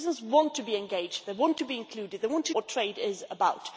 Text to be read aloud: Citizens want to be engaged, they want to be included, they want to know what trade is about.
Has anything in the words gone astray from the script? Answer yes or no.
yes